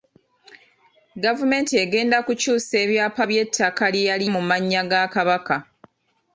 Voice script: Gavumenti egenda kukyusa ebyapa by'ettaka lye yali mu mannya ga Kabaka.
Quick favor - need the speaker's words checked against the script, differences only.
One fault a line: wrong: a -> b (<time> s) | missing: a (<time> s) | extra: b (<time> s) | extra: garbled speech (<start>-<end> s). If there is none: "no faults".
no faults